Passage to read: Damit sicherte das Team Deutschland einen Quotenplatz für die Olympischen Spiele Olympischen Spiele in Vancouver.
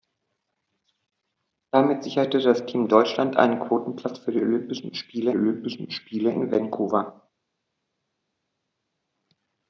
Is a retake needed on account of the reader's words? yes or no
no